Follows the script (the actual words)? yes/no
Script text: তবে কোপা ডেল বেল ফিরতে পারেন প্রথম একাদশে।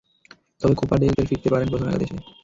yes